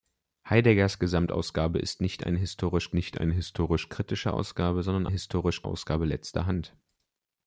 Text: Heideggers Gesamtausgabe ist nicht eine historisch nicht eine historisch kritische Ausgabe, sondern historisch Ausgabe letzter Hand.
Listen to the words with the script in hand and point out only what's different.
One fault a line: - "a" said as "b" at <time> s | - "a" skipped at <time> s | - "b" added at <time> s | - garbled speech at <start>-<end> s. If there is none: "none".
none